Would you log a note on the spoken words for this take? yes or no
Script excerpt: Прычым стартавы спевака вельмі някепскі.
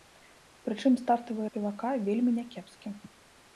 no